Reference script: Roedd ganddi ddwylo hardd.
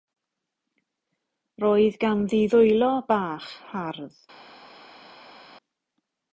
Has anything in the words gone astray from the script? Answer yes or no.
yes